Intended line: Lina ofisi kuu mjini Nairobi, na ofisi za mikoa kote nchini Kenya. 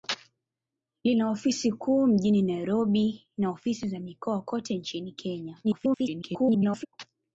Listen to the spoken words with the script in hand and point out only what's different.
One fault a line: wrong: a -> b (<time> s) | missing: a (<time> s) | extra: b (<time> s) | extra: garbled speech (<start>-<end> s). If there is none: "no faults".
extra: garbled speech (5.6-6.9 s)